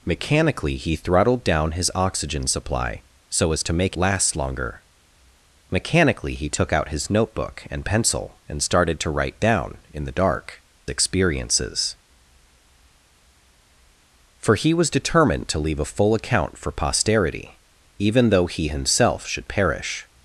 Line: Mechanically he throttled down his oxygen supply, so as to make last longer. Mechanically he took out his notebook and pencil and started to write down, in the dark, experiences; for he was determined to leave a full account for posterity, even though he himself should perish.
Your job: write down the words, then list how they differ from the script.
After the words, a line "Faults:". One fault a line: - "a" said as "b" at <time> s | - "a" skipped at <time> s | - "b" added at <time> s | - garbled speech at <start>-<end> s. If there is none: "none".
Mechanically he throttled down his oxygen supply, so as to make last longer. Mechanically he took out his notebook and pencil and started to write down, in the dark, experiences; for he was determined to leave a full account for posterity, even though he himself should perish.
Faults:
none